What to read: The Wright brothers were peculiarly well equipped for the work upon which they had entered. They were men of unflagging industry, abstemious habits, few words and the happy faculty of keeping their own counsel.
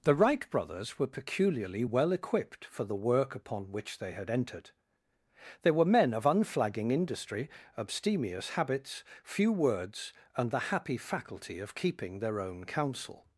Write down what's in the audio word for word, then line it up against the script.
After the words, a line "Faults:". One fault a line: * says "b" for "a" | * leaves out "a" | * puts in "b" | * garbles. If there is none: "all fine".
The Wright brothers were peculiarly well equipped for the work upon which they had entered. They were men of unflagging industry, abstemious habits, few words and the happy faculty of keeping their own counsel.
Faults:
all fine